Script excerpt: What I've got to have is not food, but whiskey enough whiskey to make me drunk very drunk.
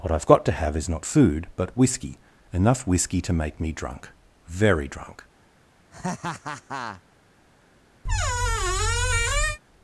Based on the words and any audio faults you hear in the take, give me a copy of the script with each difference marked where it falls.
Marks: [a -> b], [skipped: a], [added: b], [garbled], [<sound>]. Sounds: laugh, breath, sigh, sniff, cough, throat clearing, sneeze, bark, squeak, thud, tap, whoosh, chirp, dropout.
What I've got to have is not food, but whiskey enough whiskey to make me drunk very drunk. [laugh] [squeak]